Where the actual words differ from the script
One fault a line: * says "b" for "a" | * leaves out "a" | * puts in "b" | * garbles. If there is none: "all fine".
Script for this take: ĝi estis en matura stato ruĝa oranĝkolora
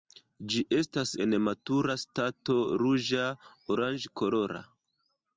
* says "estas" for "estis"